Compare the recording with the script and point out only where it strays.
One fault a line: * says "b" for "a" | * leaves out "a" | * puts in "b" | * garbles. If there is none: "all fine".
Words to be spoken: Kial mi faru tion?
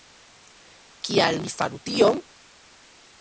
all fine